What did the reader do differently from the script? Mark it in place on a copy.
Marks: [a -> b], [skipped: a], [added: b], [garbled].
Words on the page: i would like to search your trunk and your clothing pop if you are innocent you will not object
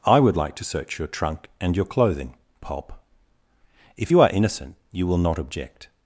i would like to search your trunk and your clothing pop if you are innocent you will not object